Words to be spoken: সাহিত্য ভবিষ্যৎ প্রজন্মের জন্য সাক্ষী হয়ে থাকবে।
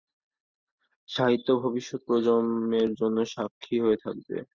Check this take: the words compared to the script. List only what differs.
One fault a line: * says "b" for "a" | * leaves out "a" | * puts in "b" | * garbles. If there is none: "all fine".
all fine